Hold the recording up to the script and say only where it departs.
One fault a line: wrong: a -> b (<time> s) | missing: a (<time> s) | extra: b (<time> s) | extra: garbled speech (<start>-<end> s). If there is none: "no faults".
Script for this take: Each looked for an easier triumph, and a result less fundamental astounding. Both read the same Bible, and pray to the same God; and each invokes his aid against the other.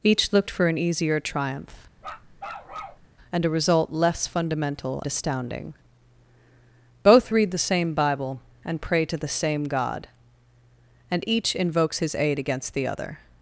no faults